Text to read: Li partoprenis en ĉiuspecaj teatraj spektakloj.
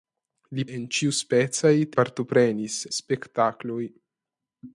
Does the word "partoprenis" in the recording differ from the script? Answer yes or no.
yes